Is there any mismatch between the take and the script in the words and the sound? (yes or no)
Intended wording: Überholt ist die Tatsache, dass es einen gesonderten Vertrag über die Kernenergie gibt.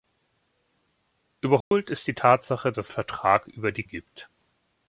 yes